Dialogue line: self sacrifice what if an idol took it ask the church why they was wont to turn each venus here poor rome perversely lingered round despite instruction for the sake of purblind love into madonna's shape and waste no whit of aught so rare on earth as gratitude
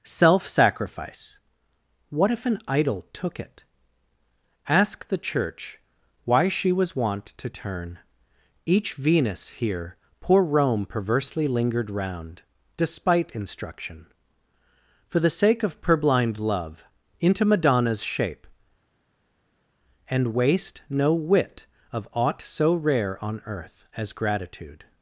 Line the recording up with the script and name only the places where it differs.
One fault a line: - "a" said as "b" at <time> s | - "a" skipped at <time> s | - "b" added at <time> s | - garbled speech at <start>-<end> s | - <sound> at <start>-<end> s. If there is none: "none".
- "they" said as "she" at 6.5 s